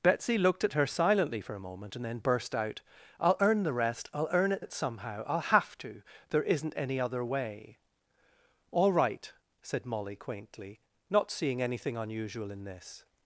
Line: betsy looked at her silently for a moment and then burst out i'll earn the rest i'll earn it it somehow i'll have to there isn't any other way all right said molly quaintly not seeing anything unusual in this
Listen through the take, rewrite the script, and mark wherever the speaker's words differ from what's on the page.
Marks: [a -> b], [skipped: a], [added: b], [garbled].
betsy looked at her silently for a moment and then burst out i'll earn the rest i'll earn it it somehow i'll have to there isn't any other way all right said molly quaintly not seeing anything unusual in this